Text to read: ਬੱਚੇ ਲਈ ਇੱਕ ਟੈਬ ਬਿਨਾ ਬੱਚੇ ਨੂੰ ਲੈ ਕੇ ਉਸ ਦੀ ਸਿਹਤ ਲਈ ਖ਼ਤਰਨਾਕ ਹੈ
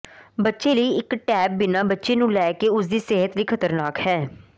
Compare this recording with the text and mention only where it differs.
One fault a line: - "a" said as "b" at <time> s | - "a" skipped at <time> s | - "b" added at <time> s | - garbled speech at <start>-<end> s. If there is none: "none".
none